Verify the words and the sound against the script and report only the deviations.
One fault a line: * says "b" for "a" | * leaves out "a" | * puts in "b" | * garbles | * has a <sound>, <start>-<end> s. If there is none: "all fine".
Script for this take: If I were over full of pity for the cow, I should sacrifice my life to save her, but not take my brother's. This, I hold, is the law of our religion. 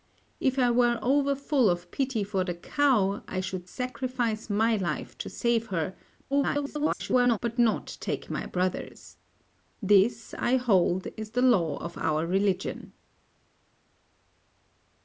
* garbles